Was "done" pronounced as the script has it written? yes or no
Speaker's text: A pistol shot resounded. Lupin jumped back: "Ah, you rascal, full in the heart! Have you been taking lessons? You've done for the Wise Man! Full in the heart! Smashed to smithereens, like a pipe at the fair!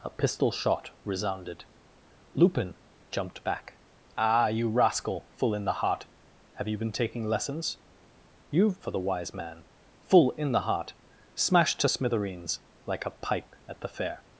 no